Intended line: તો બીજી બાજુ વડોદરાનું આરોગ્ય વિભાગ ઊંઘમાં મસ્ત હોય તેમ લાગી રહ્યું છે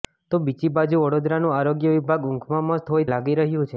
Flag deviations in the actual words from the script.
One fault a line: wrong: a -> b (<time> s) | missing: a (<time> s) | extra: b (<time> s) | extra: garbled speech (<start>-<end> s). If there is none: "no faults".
missing: તેમ (3.0 s)